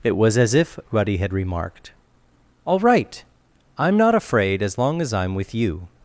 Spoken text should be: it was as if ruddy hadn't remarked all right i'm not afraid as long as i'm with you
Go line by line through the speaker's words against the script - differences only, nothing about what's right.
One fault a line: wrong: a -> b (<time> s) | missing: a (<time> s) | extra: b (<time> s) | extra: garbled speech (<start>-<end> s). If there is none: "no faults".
wrong: hadn't -> had (1.2 s)